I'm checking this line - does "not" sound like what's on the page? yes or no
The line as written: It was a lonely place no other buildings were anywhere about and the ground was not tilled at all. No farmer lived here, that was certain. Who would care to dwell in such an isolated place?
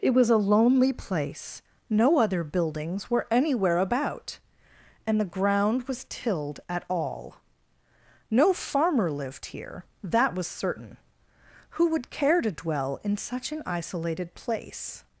no